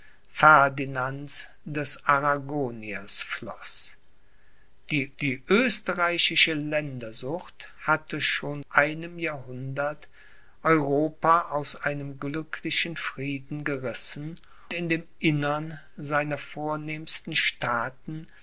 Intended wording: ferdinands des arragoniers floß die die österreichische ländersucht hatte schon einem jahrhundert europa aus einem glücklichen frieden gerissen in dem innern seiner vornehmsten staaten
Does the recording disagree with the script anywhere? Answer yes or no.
no